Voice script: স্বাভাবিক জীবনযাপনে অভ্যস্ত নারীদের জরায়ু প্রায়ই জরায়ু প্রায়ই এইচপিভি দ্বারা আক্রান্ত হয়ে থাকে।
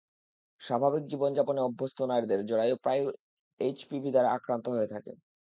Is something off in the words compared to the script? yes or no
yes